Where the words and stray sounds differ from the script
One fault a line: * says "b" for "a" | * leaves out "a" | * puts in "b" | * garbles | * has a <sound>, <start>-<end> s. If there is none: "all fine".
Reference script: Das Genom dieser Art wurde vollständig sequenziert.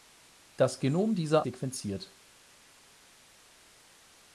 * leaves out "Art wurde vollständig"